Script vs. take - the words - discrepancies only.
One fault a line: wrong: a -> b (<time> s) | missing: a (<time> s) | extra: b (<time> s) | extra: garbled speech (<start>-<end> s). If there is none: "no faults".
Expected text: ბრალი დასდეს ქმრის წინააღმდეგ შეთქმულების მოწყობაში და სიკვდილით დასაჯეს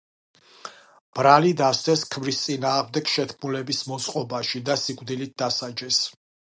no faults